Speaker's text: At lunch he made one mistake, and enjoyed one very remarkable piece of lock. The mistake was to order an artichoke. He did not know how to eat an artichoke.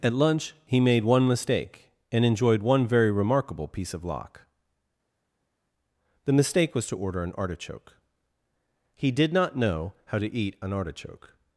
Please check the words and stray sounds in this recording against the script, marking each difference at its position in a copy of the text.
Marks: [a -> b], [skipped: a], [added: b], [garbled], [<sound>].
At lunch he made one mistake, and enjoyed one very remarkable piece of lock. The mistake was to order an artichoke. He did not know how to eat an artichoke.